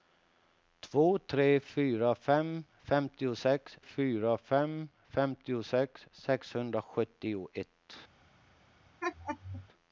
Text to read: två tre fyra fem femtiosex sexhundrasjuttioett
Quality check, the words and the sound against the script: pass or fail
fail